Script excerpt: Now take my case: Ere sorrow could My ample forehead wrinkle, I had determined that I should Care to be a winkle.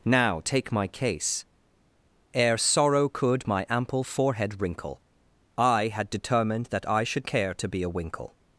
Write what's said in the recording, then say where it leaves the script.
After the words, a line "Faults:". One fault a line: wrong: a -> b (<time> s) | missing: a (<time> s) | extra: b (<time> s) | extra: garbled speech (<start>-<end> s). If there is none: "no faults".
Now take my case: Ere sorrow could My ample forehead wrinkle, I had determined that I should Care to be a winkle.
Faults:
no faults